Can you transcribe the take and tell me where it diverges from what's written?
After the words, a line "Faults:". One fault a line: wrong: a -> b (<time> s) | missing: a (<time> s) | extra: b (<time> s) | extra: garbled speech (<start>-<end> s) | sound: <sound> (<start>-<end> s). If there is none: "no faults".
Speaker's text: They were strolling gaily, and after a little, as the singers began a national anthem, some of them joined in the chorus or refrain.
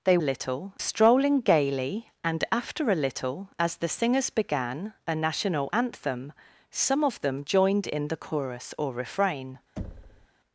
They little strolling gaily, and after a little, as the singers began a national anthem, some of them joined in the chorus or refrain.
Faults:
wrong: were -> little (0.2 s)
sound: thud (9.8-10.3 s)